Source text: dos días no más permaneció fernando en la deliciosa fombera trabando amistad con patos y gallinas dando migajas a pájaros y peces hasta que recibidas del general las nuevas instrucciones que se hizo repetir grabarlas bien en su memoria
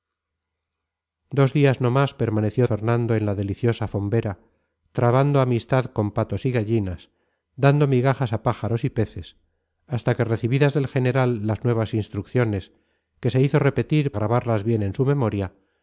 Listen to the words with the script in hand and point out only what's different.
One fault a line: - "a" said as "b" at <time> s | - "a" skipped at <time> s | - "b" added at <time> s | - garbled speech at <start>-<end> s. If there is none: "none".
none